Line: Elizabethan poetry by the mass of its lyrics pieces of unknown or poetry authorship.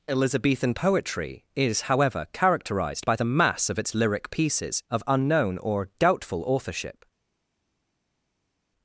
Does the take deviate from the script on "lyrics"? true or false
true